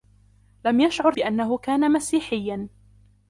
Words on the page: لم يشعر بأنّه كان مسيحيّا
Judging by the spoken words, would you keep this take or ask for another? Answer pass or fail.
pass